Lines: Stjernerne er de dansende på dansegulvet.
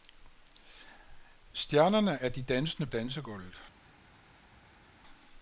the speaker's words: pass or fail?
fail